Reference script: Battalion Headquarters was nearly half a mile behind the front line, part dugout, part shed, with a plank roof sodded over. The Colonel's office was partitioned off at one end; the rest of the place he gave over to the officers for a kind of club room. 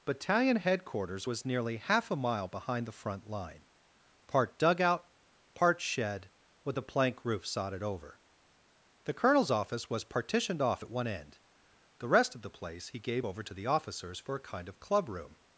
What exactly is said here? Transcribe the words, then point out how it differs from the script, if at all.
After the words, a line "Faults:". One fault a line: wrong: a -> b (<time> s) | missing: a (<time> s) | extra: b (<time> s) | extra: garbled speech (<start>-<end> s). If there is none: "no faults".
Battalion Headquarters was nearly half a mile behind the front line, part dugout, part shed, with a plank roof sodded over. The Colonel's office was partitioned off at one end; the rest of the place he gave over to the officers for a kind of club room.
Faults:
no faults